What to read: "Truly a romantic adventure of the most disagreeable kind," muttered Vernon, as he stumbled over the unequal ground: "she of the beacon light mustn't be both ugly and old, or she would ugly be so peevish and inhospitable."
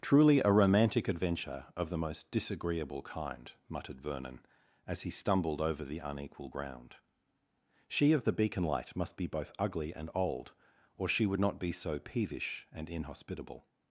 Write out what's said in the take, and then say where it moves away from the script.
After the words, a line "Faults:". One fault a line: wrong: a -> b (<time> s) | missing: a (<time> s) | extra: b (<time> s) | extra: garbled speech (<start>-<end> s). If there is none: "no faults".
"Truly a romantic adventure of the most disagreeable kind," muttered Vernon, as he stumbled over the unequal ground: "she of the beacon light must be both ugly and old, or she would not be so peevish and inhospitable."
Faults:
wrong: mustn't -> must (8.9 s)
wrong: ugly -> not (11.4 s)